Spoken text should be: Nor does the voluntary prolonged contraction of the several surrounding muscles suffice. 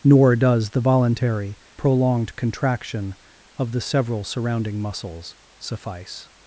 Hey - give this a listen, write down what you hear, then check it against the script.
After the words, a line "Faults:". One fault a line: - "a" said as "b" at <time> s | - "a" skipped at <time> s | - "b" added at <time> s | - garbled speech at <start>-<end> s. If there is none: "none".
Nor does the voluntary prolonged contraction of the several surrounding muscles suffice.
Faults:
none